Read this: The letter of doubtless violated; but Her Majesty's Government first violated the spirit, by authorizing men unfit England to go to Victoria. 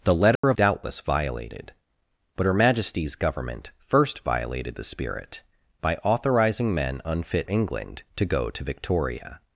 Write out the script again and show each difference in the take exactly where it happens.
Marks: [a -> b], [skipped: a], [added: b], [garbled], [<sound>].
The letter [dropout] of doubtless violated; but Her Majesty's Government first violated the spirit, by authorizing men unfit England to go to Victoria.